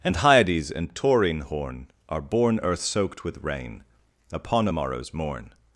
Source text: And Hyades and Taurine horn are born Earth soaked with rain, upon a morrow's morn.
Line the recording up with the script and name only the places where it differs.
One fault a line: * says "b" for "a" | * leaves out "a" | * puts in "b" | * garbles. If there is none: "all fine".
all fine